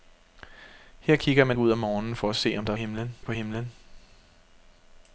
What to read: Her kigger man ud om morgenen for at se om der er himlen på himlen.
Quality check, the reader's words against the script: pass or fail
pass